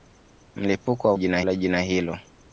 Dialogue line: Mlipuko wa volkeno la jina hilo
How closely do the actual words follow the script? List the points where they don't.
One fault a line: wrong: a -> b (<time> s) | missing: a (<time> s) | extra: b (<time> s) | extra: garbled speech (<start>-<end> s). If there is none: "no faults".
wrong: volkeno -> jina (1.1 s)